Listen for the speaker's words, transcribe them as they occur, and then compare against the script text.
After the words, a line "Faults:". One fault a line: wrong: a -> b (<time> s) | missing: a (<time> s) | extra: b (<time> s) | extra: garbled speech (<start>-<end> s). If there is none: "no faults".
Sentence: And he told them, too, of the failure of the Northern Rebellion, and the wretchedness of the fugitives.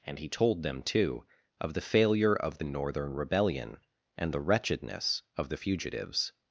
And he told them, too, of the failure of the Northern Rebellion, and the wretchedness of the fugitives.
Faults:
no faults